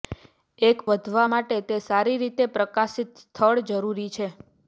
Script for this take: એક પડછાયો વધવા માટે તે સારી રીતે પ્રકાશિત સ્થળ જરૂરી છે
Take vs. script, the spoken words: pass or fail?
fail